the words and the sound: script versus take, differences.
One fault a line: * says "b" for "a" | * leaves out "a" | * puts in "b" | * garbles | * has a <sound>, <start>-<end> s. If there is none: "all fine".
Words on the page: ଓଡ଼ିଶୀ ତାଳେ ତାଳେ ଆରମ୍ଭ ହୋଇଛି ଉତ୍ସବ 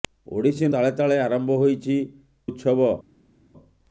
all fine